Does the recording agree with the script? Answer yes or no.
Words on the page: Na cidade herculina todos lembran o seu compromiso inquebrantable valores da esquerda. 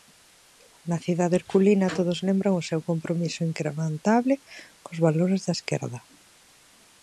no